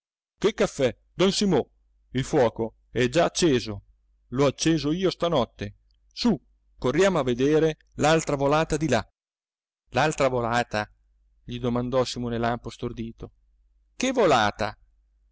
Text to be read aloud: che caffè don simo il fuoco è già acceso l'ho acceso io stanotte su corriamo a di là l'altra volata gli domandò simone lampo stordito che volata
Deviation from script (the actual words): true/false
true